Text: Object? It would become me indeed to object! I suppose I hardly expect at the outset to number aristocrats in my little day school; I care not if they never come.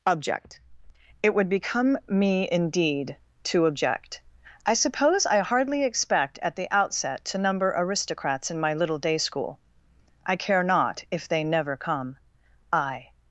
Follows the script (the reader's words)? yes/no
no